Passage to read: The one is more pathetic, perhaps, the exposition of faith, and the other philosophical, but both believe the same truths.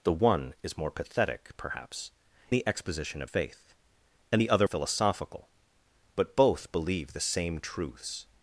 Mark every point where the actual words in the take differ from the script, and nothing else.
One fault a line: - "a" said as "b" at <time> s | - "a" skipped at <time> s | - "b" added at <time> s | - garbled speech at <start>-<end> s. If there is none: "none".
none